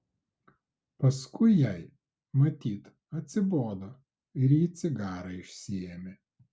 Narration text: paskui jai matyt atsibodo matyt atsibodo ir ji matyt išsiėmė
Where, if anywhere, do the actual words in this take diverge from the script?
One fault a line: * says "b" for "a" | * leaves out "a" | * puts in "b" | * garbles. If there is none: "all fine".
* leaves out "matyt atsibodo"
* says "cigarą" for "matyt"